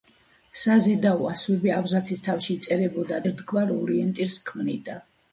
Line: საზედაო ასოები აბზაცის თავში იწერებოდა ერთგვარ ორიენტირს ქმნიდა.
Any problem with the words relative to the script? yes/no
no